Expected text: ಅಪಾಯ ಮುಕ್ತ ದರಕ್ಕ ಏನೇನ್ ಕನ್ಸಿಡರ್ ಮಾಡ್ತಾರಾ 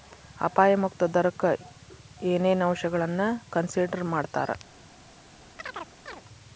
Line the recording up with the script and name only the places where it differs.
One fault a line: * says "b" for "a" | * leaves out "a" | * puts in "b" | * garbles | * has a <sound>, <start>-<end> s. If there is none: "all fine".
* puts in "ಅಂಶಗಳನ್ನ"
* has a chirp, 5.6-6.2 s